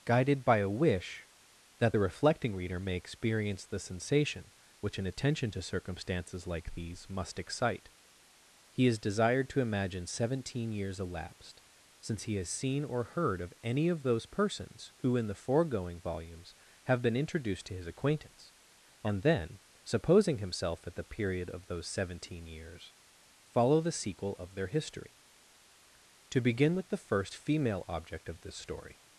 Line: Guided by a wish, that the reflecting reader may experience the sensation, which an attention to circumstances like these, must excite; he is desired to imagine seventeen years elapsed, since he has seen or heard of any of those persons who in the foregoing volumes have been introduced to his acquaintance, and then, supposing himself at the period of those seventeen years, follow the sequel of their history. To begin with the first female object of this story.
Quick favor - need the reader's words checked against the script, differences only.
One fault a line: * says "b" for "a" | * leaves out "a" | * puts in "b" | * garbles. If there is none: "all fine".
all fine